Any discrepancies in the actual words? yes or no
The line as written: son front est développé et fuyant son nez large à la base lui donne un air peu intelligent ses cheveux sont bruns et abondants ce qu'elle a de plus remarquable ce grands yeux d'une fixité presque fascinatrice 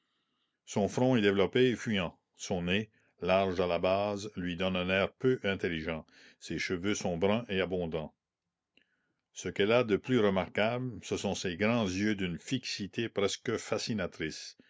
yes